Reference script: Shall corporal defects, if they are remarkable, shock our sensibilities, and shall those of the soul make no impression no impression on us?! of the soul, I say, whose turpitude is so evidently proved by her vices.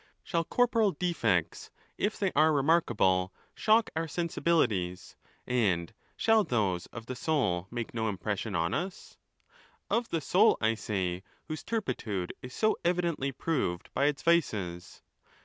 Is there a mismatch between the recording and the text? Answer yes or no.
yes